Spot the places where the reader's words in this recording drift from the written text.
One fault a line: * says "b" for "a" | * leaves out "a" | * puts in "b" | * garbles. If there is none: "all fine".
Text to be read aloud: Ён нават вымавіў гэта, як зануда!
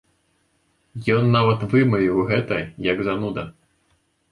all fine